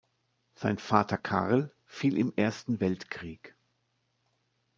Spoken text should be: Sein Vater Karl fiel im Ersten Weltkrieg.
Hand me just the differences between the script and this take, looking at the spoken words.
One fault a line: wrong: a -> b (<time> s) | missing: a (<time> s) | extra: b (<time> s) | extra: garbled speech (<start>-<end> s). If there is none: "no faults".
no faults